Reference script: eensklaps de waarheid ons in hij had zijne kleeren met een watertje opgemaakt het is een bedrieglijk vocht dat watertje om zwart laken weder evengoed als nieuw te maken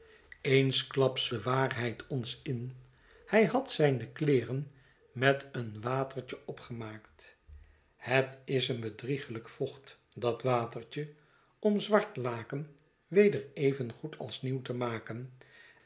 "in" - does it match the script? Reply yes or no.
yes